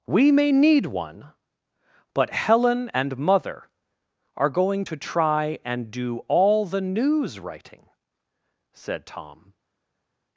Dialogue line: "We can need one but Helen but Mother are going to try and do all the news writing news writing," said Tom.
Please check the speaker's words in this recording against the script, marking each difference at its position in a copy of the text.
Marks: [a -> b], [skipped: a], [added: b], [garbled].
"We [can -> may] need one but Helen [but -> and] Mother are going to try and do all the news writing [skipped: news writing,"] said Tom.